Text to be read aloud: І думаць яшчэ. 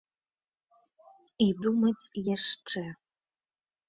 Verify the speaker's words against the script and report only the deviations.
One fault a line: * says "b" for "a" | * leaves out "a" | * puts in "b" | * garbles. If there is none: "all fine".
all fine